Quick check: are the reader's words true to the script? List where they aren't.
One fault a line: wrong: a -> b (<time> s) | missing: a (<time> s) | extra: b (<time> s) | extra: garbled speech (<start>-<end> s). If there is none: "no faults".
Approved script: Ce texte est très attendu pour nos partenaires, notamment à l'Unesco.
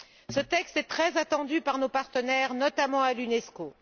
wrong: pour -> par (1.6 s)